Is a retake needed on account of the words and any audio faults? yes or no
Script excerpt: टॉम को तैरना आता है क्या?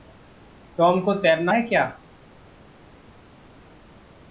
yes